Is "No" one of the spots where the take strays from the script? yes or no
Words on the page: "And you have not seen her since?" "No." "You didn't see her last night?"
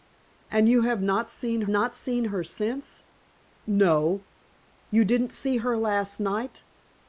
no